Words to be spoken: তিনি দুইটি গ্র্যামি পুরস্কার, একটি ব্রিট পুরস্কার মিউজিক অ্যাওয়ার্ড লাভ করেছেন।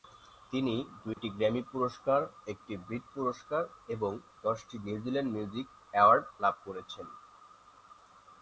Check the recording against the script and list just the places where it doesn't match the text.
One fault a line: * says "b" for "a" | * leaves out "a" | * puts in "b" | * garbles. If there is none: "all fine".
* puts in "এবং দশটি নিউজিল্যান্ড"